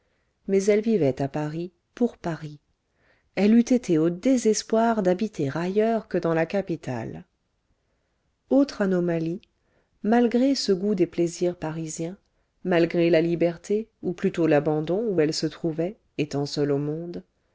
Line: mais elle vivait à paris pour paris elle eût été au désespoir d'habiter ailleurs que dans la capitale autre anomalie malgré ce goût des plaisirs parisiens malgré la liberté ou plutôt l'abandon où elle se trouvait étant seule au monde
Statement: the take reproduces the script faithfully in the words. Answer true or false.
true